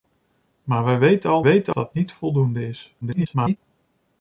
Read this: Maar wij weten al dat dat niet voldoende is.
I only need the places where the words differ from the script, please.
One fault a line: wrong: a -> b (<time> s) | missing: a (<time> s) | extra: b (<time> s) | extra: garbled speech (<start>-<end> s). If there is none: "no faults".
wrong: dat -> weten (1.4 s)
extra: garbled speech (3.0-3.6 s)